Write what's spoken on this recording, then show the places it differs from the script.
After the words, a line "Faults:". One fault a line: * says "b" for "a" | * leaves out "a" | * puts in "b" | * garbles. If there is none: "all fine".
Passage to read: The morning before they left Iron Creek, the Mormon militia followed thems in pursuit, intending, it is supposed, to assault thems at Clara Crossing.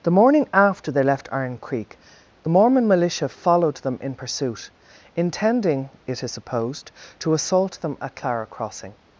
The morning after they left Iron Creek, the Mormon militia followed them in pursuit, intending, it is supposed, to assault them at Clara Crossing.
Faults:
* says "after" for "before"
* says "them" for "thems"
* says "them" for "thems"